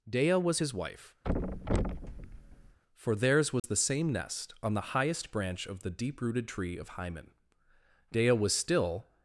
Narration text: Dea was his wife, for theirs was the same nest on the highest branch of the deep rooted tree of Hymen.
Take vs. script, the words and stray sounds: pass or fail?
fail